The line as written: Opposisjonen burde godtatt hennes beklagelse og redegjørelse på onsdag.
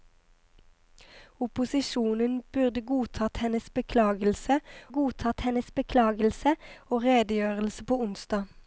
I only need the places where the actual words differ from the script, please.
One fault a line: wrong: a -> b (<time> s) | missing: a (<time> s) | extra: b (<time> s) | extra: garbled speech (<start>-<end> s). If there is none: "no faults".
extra: godtatt hennes beklagelse (4.9 s)